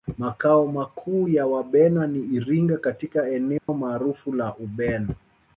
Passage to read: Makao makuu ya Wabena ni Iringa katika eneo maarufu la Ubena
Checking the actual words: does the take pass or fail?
pass